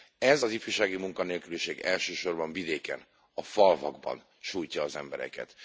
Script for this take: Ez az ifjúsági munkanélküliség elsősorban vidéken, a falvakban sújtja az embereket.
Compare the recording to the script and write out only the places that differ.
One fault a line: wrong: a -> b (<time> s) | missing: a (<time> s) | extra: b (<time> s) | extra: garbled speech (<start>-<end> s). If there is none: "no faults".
no faults